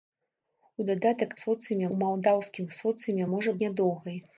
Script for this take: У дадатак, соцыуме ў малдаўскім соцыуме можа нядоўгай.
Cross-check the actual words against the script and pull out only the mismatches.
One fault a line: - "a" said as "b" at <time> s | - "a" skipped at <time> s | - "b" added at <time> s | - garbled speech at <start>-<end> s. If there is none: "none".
none